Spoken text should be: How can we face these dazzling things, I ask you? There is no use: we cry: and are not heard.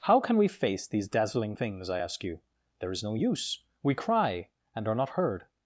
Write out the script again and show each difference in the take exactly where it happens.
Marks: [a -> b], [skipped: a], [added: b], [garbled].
How can we face these dazzling things, I ask you? There is no use: we cry: and are not heard.